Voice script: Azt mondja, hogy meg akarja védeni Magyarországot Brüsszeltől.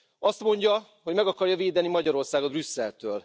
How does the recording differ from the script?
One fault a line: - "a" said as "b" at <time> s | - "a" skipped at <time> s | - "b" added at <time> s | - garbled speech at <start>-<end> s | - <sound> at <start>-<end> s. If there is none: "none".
none